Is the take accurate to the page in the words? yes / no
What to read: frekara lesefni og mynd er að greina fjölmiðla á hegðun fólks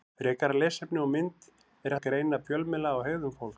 yes